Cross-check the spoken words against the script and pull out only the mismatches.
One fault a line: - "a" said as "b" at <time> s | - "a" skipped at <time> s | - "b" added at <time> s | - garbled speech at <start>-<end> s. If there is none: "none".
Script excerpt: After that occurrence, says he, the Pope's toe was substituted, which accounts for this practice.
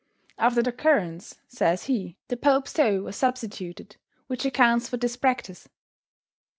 - "that" skipped at 0.6 s